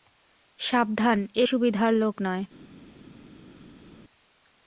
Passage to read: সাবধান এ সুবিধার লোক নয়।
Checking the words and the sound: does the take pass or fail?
pass